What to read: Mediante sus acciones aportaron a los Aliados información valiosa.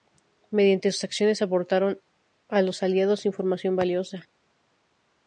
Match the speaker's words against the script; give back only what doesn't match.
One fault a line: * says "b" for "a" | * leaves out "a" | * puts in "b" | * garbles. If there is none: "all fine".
all fine